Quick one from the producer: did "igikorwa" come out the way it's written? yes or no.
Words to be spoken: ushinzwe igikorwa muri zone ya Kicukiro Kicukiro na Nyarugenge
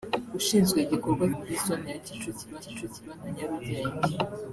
yes